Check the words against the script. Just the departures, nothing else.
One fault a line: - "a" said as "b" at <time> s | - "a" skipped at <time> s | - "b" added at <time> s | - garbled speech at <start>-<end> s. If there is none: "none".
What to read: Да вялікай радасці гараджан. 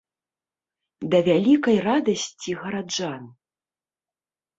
none